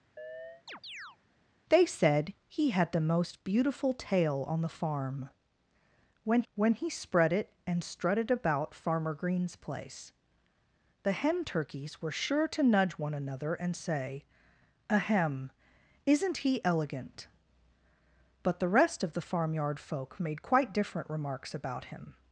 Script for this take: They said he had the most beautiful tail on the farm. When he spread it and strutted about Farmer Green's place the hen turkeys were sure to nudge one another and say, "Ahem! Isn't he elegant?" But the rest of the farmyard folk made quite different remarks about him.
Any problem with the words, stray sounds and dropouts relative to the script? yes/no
yes